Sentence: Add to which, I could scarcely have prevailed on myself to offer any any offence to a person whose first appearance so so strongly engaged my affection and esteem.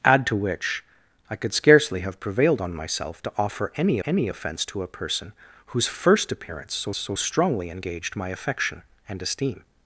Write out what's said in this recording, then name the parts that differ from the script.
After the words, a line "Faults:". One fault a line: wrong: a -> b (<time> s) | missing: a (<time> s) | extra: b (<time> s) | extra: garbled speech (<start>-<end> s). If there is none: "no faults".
Add to which, I could scarcely have prevailed on myself to offer any any offence to a person whose first appearance so so strongly engaged my affection and esteem.
Faults:
no faults